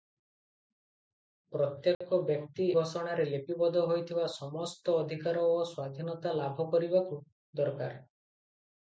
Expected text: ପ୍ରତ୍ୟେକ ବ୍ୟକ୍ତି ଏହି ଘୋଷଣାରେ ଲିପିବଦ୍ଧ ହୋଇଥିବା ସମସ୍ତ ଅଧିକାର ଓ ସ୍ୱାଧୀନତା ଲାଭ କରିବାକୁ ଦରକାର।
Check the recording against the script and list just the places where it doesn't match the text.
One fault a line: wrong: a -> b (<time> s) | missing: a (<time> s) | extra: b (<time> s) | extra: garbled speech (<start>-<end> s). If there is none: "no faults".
missing: ଏହି (2.6 s)